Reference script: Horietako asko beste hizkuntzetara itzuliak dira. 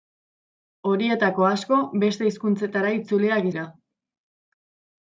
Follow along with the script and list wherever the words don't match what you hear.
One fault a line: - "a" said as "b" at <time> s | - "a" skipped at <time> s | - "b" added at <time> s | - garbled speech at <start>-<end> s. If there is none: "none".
none